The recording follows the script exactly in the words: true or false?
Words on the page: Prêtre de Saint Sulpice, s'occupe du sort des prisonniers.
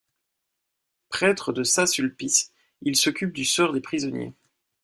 false